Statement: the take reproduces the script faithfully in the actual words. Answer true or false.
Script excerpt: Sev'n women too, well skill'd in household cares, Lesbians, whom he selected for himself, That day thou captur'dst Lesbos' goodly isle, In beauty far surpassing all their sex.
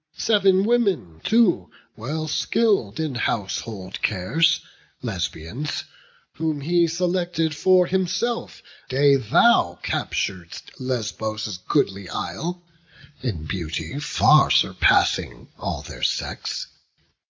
false